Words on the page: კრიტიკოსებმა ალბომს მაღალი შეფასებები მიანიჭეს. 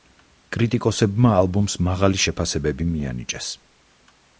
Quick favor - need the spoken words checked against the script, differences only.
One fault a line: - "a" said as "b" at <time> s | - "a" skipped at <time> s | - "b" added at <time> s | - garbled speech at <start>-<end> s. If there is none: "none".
none